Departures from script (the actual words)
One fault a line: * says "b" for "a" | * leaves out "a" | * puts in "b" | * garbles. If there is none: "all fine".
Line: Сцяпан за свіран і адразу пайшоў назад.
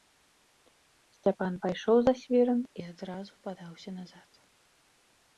* puts in "пайшоў"
* says "падаўся" for "пайшоў"